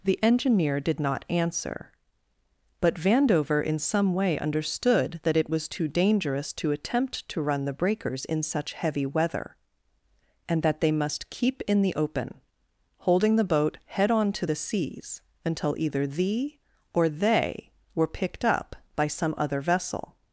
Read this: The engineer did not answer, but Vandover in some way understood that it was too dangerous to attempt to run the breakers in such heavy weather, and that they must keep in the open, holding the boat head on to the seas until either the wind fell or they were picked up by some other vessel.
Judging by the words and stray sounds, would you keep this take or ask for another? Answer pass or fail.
fail